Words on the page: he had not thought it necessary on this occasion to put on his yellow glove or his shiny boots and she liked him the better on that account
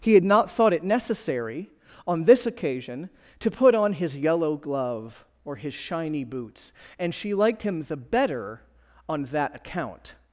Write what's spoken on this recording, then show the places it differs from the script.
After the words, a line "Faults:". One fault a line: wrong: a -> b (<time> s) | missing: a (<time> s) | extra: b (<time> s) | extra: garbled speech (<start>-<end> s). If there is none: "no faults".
he had not thought it necessary on this occasion to put on his yellow glove or his shiny boots and she liked him the better on that account
Faults:
no faults